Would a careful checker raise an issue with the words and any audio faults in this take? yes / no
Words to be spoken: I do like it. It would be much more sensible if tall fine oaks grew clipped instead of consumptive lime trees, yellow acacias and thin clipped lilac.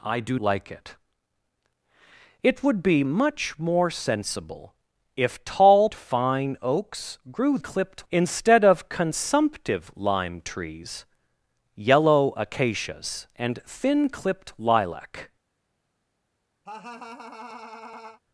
yes